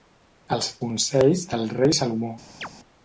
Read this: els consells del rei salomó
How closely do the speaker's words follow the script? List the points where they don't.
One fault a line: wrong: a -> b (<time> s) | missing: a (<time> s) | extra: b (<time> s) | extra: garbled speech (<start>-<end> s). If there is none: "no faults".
no faults